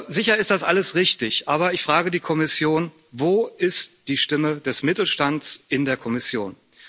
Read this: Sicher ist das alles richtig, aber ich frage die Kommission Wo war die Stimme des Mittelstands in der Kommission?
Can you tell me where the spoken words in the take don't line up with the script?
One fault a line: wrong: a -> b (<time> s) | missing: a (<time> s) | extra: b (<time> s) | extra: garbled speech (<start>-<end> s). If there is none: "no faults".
wrong: war -> ist (3.6 s)